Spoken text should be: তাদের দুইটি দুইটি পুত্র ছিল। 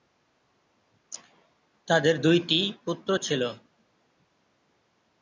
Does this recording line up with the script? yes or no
no